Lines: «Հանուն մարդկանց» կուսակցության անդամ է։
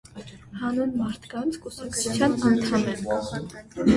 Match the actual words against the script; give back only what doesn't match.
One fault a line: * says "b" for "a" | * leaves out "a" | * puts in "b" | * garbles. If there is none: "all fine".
all fine